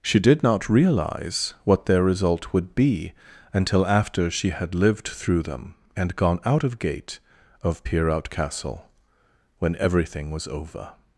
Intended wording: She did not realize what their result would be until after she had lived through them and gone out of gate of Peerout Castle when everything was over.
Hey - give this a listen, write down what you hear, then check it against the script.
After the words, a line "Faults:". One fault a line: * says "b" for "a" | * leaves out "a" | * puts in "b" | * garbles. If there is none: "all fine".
She did not realize what their result would be until after she had lived through them and gone out of gate of Peerout Castle when everything was over.
Faults:
all fine